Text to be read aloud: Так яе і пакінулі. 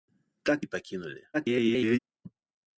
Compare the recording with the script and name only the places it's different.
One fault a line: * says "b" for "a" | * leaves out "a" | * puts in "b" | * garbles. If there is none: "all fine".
* leaves out "яе"
* garbles